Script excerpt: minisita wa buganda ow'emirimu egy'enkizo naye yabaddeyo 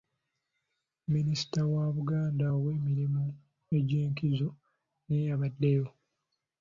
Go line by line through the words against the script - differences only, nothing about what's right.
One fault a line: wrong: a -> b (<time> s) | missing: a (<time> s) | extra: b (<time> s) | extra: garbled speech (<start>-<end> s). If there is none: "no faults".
no faults